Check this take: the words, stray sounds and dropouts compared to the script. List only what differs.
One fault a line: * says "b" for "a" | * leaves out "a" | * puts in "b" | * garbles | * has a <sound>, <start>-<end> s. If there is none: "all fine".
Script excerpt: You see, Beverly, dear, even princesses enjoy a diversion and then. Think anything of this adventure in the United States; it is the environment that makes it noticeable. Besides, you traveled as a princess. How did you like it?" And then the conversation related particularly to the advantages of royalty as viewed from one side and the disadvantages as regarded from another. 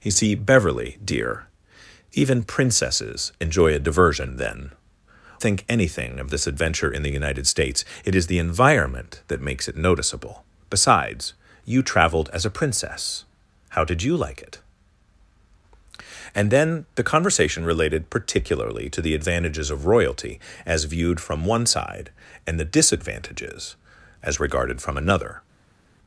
all fine